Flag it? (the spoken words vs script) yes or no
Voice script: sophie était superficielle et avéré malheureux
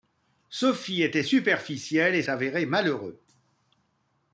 no